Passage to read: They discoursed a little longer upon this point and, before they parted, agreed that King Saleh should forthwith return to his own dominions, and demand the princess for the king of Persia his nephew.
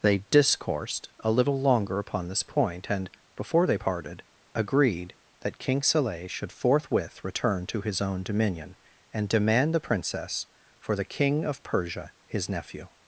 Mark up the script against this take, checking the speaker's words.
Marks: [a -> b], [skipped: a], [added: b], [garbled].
They discoursed a little longer upon this point and, before they parted, agreed that King Saleh should forthwith return to his own [dominions, -> dominion] and demand the princess for the king of Persia his nephew.